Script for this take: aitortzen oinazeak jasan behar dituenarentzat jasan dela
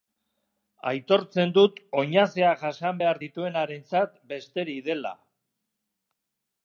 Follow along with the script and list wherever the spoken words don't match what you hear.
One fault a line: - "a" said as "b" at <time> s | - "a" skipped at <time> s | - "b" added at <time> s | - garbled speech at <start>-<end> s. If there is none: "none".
- "dut" added at 1.6 s
- "jasan" said as "besterik" at 4.3 s